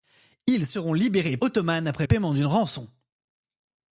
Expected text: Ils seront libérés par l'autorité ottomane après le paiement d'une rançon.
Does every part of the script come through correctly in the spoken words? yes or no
no